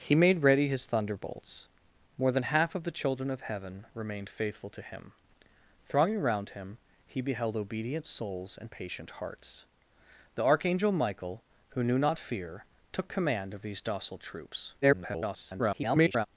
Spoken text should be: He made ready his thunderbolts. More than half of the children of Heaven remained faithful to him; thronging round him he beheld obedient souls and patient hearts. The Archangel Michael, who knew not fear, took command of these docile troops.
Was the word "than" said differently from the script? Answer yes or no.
no